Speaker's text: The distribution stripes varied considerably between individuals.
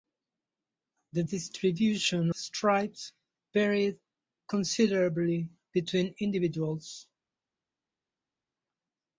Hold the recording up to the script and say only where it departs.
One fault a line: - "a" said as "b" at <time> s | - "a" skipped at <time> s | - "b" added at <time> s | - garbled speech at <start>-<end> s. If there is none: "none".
none